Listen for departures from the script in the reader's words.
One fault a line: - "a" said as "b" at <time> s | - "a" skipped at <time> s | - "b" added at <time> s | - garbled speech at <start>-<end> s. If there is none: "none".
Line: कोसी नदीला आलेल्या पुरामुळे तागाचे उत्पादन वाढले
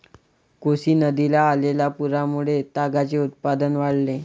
none